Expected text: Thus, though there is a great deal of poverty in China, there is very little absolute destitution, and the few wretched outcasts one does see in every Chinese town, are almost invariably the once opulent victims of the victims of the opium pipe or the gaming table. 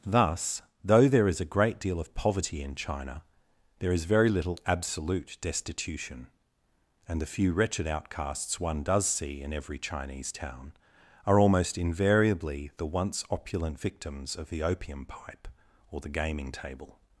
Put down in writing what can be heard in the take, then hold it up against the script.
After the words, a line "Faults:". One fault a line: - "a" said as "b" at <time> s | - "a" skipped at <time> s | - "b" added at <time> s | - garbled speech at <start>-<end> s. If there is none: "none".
Thus, though there is a great deal of poverty in China, there is very little absolute destitution, and the few wretched outcasts one does see in every Chinese town, are almost invariably the once opulent victims of the opium pipe or the gaming table.
Faults:
- "victims of the" skipped at 14.6 s